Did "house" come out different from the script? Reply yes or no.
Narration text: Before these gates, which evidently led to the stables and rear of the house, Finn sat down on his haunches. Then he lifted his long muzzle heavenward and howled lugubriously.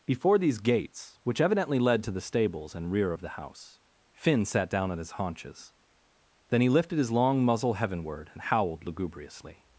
no